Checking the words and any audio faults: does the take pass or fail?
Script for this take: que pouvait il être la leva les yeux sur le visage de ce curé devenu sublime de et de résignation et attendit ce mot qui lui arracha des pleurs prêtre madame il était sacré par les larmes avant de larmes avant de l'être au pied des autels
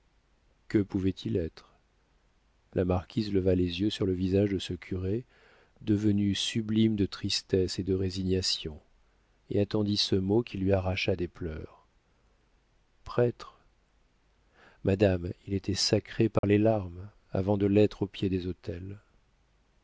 fail